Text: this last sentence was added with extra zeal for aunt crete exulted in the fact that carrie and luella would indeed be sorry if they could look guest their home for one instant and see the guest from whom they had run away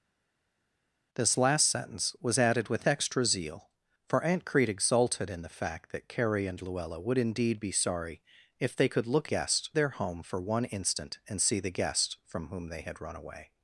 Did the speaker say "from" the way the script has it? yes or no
yes